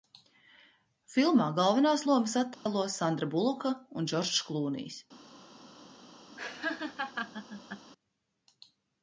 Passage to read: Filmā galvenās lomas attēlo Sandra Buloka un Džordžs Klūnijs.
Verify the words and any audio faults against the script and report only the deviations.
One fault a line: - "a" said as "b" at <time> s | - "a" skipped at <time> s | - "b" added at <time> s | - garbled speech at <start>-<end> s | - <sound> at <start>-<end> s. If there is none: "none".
- dropout at 2.5-2.7 s
- laugh at 6.4-7.9 s